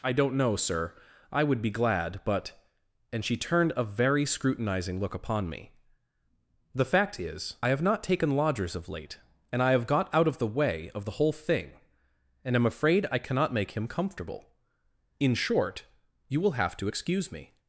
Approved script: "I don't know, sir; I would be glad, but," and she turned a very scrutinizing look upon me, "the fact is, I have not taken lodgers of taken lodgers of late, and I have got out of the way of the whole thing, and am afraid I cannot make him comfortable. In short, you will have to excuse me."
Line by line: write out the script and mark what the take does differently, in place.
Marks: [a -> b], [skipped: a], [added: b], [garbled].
"I don't know, sir; I would be glad, but," and she turned a very scrutinizing look upon me, "the fact is, I have not taken lodgers of [skipped: taken lodgers of] late, and I have got out of the way of the whole thing, and am afraid I cannot make him comfortable. In short, you will have to excuse me."